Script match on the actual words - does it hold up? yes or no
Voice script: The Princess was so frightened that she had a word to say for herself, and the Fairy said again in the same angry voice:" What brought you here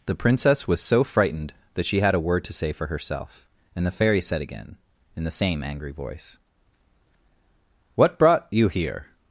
yes